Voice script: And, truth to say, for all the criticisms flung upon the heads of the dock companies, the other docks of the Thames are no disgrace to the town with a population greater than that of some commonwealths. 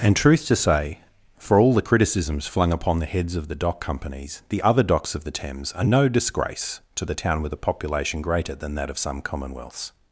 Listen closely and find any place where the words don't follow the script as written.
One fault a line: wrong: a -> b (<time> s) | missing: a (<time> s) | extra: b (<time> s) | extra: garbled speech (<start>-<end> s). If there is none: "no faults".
no faults